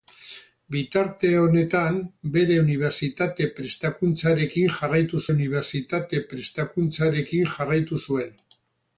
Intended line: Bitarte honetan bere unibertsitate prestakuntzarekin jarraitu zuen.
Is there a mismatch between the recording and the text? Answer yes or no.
yes